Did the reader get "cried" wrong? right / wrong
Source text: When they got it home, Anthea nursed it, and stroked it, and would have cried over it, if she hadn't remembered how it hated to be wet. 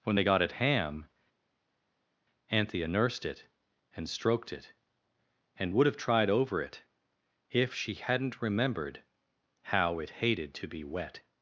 wrong